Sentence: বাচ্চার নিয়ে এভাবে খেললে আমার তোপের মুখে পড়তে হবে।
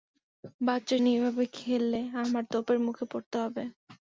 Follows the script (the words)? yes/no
yes